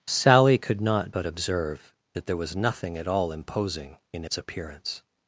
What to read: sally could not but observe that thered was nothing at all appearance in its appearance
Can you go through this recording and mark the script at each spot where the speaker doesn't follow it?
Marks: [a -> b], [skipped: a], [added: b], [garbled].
sally could not but observe that [thered -> there] was nothing at all [appearance -> imposing] in its appearance